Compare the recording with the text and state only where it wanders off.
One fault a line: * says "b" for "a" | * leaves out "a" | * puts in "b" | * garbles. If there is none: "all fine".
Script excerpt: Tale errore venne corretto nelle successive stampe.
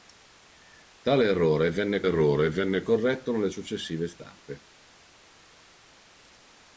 * puts in "errore venne"